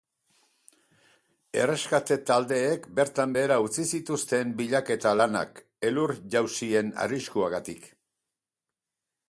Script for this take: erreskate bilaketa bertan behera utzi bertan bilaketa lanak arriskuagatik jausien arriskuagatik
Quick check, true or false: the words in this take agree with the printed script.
false